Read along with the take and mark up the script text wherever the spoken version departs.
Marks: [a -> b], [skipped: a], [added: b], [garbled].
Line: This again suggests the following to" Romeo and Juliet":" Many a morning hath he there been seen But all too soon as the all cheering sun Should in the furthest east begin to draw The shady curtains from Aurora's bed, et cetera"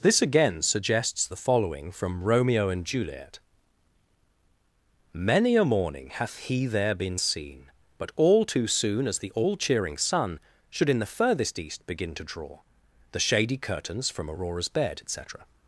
This again suggests the following [to" -> from] Romeo and Juliet":" Many a morning hath he there been seen But all too soon as the all cheering sun Should in the furthest east begin to draw The shady curtains from Aurora's bed, et cetera"